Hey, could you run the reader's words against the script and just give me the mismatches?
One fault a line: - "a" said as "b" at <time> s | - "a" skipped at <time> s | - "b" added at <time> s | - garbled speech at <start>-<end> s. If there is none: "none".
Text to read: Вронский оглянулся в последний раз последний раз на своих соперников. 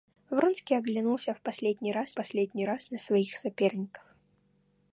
none